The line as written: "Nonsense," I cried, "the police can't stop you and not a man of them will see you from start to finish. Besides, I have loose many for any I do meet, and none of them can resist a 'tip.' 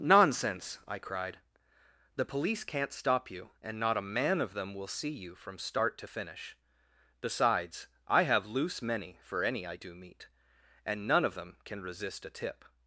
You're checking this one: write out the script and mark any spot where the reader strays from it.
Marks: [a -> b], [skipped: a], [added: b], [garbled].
"Nonsense," I cried, "the police can't stop you and not a man of them will see you from start to finish. Besides, I have loose many for any I do meet, and none of them can resist a 'tip.'